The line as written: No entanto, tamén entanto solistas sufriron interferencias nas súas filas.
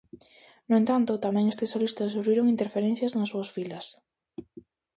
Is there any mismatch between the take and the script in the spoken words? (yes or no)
yes